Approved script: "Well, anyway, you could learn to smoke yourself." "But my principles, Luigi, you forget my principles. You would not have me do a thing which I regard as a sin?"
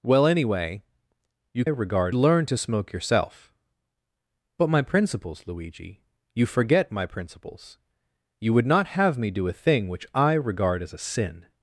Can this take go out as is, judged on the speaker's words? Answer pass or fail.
fail